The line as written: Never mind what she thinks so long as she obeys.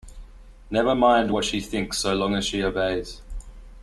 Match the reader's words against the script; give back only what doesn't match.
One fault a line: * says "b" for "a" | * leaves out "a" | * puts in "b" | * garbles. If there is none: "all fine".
all fine